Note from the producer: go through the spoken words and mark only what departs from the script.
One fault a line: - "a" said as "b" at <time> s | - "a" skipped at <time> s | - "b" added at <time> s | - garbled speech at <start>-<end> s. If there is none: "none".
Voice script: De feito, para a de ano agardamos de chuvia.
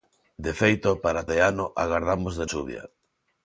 none